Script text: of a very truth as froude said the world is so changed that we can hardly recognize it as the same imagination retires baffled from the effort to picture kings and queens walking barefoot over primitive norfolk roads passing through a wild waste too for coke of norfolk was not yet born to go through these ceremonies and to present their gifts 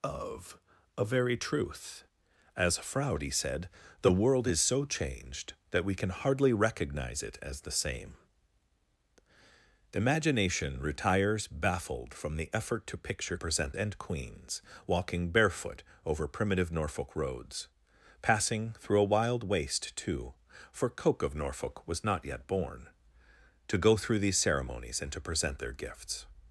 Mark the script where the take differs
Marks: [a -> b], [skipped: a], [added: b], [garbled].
of a very truth as froude said the world is so changed that we can hardly recognize it as the same imagination retires baffled from the effort to picture [kings -> present] and queens walking barefoot over primitive norfolk roads passing through a wild waste too for coke of norfolk was not yet born to go through these ceremonies and to present their gifts